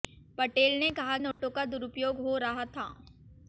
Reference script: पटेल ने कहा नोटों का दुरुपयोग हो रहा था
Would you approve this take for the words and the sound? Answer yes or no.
no